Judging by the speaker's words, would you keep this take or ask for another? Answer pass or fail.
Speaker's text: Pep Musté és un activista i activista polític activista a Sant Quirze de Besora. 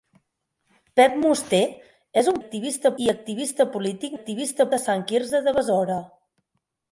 pass